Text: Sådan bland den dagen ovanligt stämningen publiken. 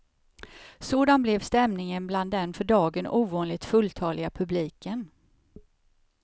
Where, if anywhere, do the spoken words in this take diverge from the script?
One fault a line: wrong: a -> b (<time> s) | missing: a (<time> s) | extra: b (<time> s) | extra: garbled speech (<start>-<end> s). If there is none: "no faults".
extra: blev stämningen (1.2 s)
extra: för (2.5 s)
wrong: stämningen -> fulltaliga (3.6 s)